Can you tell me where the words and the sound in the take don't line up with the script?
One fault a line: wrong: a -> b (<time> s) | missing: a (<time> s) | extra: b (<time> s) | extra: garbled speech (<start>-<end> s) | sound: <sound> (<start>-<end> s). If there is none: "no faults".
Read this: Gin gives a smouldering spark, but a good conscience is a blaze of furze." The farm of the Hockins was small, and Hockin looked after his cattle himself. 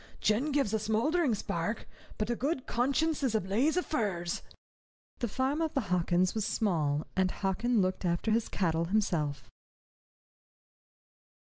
no faults